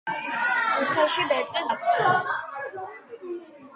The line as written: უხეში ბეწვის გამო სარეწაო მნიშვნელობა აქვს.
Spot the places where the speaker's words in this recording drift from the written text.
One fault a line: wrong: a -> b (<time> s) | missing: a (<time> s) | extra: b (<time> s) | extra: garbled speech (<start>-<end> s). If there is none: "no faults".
missing: გამო სარეწაო მნიშვნელობა (1.7 s)